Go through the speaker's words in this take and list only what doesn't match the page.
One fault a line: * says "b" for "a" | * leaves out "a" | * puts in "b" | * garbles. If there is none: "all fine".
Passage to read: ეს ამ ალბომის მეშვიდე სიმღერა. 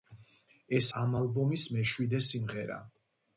all fine